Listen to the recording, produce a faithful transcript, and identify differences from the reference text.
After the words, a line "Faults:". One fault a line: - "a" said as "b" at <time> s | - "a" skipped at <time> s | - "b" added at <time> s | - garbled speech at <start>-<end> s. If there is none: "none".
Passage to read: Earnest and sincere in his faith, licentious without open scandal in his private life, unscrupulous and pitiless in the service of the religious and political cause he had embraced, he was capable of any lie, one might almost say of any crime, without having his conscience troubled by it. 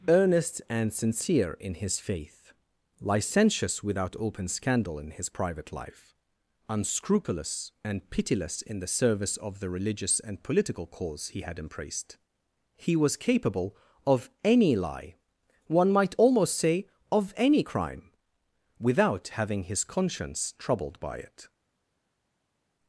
Earnest and sincere in his faith, licentious without open scandal in his private life, unscrupulous and pitiless in the service of the religious and political cause he had embraced, he was capable of any lie, one might almost say of any crime, without having his conscience troubled by it.
Faults:
none